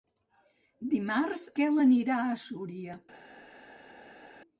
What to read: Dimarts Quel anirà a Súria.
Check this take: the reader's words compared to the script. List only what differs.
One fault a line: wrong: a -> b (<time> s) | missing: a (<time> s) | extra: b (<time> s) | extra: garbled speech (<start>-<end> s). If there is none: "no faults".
no faults